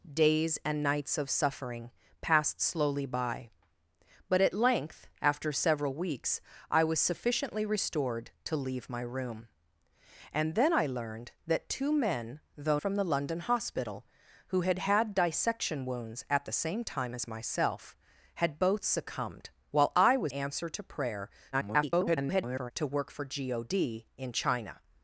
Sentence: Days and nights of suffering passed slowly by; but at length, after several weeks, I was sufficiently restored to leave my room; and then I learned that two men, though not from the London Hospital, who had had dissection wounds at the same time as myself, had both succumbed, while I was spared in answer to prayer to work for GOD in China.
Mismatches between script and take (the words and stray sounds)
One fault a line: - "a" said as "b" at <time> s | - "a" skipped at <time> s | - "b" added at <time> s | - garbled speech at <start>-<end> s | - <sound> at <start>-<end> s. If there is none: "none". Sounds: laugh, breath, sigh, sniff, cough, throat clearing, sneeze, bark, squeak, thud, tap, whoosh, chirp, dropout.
- "not" skipped at 12.8 s
- "spared in" skipped at 20.3 s
- garbled speech at 21.5-22.7 s